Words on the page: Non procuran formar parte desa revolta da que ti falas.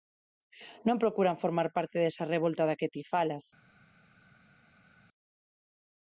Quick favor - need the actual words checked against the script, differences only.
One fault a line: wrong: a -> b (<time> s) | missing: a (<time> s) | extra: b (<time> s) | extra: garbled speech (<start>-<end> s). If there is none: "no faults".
no faults